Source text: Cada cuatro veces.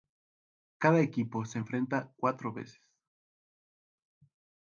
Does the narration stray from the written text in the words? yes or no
yes